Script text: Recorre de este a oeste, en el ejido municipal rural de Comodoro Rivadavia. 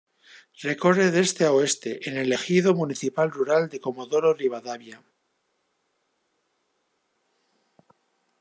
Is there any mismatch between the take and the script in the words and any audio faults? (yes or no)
no